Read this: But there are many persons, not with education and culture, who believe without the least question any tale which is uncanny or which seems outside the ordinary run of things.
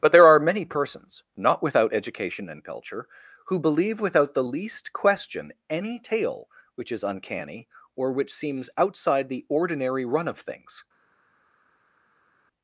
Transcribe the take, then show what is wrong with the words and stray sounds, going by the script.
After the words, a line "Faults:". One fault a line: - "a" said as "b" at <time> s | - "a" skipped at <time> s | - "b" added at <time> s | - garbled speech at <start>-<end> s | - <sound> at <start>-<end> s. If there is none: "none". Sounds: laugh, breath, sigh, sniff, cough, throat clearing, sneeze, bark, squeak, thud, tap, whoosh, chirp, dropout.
But there are many persons, not without education and culture, who believe without the least question any tale which is uncanny or which seems outside the ordinary run of things.
Faults:
- "with" said as "without" at 1.6 s